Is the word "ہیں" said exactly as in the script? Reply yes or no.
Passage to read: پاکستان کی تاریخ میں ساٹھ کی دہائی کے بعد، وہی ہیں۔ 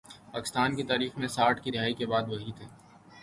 no